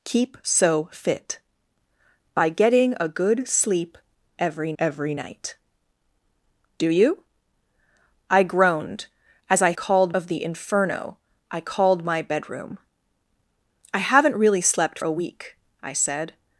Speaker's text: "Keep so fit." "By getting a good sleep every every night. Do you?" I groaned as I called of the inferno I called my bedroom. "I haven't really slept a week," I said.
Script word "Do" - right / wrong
right